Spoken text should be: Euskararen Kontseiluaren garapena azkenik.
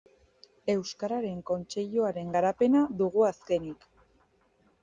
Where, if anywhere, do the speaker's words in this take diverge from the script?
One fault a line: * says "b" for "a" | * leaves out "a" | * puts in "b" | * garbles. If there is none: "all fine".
* puts in "dugu"